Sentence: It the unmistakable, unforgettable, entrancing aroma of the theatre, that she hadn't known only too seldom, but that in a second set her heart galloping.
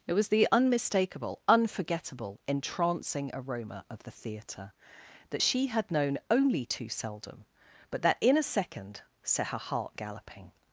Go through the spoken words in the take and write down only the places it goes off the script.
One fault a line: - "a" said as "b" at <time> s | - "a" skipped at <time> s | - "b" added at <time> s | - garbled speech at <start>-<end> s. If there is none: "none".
- "was" added at 0.1 s
- "hadn't" said as "had" at 5.7 s